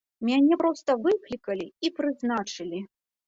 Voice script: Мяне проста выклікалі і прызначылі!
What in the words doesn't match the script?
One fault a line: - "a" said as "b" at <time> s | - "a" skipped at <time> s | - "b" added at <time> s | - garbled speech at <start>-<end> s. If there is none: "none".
none